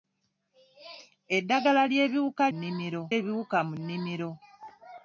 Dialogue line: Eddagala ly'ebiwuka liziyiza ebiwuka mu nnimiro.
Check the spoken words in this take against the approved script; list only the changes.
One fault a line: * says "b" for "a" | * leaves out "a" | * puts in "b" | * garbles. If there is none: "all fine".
* says "nnimiro" for "liziyiza"